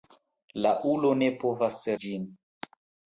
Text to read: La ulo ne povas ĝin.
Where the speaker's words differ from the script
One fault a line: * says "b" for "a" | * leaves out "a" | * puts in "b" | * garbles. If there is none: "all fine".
all fine